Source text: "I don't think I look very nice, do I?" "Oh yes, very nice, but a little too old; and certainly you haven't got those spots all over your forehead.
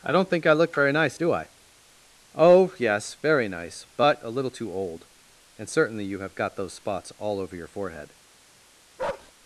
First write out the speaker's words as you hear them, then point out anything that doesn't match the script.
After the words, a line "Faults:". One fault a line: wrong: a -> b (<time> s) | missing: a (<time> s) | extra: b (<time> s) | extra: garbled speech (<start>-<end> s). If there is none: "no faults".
"I don't think I look very nice, do I?" "Oh yes, very nice, but a little too old; and certainly you have got those spots all over your forehead.
Faults:
wrong: haven't -> have (6.2 s)